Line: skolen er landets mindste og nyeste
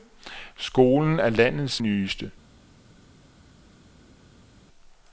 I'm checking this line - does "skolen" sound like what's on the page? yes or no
yes